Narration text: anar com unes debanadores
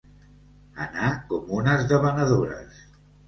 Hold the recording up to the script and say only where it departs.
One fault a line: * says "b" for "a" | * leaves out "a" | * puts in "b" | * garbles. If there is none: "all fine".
all fine